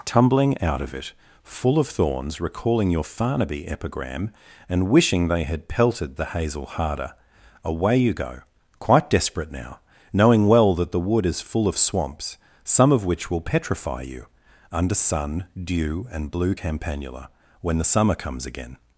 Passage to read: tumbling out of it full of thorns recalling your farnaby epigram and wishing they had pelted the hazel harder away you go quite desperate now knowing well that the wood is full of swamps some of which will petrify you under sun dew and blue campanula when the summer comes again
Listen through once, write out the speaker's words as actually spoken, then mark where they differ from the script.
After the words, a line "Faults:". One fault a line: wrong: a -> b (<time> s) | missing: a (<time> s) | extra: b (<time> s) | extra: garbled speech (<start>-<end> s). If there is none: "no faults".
tumbling out of it full of thorns recalling your farnaby epigram and wishing they had pelted the hazel harder away you go quite desperate now knowing well that the wood is full of swamps some of which will petrify you under sun dew and blue campanula when the summer comes again
Faults:
no faults